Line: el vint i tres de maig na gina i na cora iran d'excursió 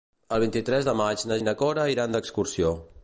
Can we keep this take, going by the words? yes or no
no